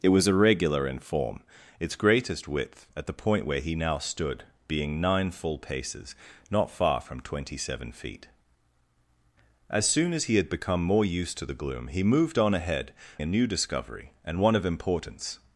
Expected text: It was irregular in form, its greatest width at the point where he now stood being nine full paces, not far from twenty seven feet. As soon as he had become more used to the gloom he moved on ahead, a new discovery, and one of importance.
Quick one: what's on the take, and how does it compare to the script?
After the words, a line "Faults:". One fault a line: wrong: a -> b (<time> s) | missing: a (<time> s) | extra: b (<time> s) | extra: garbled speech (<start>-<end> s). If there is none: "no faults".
It was irregular in form, its greatest width at the point where he now stood being nine full paces, not far from twenty seven feet. As soon as he had become more used to the gloom he moved on ahead, a new discovery, and one of importance.
Faults:
no faults